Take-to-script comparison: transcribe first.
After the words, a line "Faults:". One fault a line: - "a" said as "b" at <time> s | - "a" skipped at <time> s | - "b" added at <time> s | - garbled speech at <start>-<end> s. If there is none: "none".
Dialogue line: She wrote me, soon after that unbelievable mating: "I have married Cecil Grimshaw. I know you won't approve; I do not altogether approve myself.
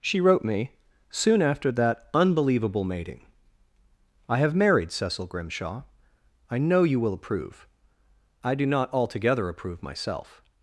She wrote me, soon after that unbelievable mating: "I have married Cecil Grimshaw. I know you will approve; I do not altogether approve myself.
Faults:
- "won't" said as "will" at 7.0 s